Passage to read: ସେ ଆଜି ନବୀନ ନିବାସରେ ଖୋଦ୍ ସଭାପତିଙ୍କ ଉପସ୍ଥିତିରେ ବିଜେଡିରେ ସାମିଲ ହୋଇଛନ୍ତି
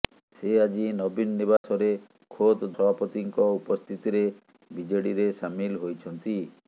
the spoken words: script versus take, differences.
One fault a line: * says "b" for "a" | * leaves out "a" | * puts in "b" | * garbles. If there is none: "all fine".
all fine